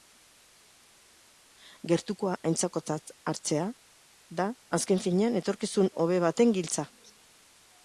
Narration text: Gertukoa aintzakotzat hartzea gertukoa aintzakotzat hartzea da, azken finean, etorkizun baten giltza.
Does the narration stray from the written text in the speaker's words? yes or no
yes